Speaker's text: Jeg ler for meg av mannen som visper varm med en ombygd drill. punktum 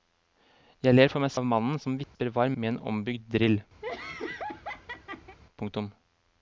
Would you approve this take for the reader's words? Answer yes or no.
yes